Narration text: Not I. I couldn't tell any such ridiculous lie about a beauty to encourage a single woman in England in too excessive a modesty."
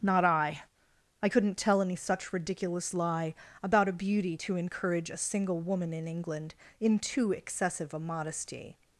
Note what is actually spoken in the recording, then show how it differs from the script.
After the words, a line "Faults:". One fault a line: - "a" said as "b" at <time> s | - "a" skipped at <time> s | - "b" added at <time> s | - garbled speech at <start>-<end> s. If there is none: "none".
Not I. I couldn't tell any such ridiculous lie about a beauty to encourage a single woman in England in too excessive a modesty."
Faults:
none